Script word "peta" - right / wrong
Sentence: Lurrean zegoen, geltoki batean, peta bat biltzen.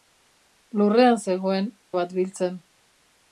wrong